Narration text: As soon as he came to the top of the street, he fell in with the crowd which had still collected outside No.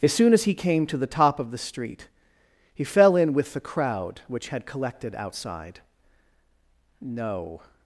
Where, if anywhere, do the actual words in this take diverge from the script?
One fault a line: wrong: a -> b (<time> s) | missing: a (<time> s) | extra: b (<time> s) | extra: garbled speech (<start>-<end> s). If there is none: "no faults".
missing: still (4.7 s)